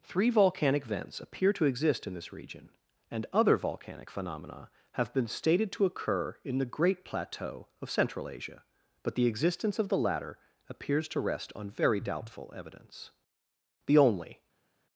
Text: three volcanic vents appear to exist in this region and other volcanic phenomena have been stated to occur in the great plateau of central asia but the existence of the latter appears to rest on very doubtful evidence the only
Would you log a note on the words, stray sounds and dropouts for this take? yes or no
no